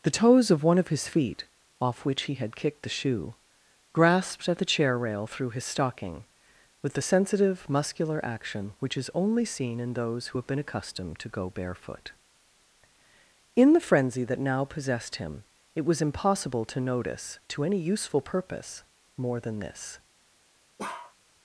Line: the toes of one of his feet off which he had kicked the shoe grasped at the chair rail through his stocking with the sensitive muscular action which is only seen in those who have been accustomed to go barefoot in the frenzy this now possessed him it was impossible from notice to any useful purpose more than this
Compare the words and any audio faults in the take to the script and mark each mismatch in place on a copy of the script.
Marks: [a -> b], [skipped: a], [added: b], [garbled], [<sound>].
the toes of one of his feet off which he had kicked the shoe grasped at the chair rail through his stocking with the sensitive muscular action which is only seen in those who have been accustomed to go barefoot in the frenzy [this -> that] now possessed him it was impossible [from -> to] notice to any useful purpose more than this [bark]